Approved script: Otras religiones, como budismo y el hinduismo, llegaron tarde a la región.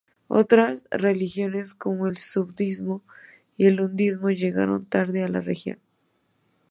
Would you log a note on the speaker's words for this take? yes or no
yes